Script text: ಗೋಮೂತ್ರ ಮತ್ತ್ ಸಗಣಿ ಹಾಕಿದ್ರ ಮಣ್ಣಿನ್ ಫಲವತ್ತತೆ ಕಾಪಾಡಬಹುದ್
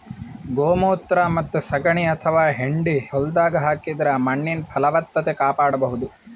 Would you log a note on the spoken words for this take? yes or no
yes